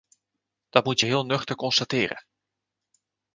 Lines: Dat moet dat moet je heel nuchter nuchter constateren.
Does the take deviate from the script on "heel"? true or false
false